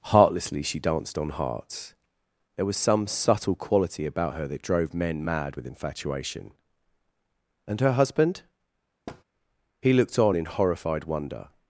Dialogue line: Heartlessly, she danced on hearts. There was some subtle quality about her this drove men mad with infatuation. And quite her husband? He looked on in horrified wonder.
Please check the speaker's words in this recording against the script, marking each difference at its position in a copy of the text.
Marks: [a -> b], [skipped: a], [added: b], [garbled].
Heartlessly, she danced on hearts. There was some subtle quality about her [this -> that] drove men mad with infatuation. And [skipped: quite] her husband? He looked on in horrified wonder.